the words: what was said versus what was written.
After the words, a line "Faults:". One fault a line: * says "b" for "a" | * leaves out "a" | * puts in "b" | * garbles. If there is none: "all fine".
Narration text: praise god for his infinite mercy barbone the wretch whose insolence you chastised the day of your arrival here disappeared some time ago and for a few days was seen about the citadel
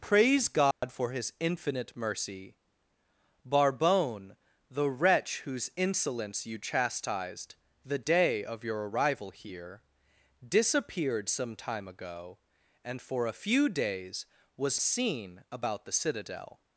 praise god for his infinite mercy barbone the wretch whose insolence you chastised the day of your arrival here disappeared some time ago and for a few days was seen about the citadel
Faults:
all fine